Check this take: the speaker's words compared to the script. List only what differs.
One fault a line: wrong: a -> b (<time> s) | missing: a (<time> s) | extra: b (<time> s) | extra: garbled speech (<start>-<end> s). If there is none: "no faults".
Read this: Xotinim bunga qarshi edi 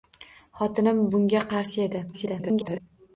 extra: garbled speech (2.1-2.8 s)